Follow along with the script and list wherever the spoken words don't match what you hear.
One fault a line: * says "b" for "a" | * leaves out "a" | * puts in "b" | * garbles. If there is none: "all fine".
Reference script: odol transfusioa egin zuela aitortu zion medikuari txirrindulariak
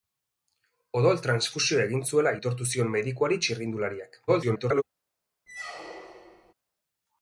* garbles